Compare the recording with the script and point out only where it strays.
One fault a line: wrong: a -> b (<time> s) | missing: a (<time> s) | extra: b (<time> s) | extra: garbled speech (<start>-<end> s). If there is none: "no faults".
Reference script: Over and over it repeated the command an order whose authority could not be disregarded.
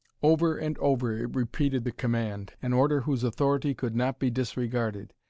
no faults